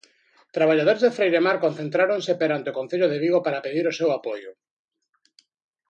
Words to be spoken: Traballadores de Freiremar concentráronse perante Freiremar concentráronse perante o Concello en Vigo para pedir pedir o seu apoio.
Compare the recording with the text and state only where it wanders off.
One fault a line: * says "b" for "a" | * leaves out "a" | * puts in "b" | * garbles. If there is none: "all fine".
* leaves out "Freiremar concentráronse perante"
* says "de" for "en"
* leaves out "pedir"